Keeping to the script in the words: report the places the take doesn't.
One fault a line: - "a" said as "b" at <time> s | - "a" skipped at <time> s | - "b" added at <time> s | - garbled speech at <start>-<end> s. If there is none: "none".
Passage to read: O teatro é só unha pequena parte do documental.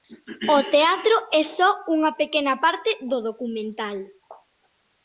none